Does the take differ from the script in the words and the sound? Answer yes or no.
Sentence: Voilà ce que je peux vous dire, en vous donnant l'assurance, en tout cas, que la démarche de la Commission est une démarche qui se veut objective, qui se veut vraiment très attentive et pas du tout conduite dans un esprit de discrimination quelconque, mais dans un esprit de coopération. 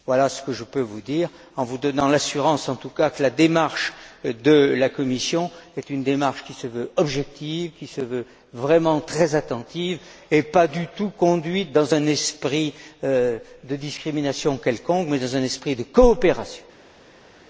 no